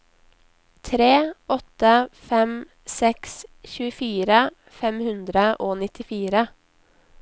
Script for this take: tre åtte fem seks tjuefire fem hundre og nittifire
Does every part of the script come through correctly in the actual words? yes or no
yes